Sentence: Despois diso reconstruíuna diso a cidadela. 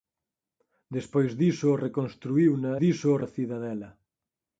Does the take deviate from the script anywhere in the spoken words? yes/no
no